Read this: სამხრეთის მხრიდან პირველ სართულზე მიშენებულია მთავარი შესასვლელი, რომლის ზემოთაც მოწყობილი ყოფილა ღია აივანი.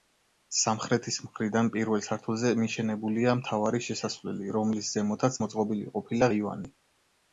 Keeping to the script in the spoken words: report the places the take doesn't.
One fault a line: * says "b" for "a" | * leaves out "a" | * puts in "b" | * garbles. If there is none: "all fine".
* leaves out "ღია"